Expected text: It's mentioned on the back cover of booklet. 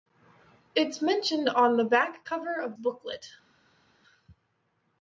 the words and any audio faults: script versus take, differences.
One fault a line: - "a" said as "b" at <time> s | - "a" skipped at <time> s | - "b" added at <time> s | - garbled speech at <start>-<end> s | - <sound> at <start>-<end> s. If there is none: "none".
none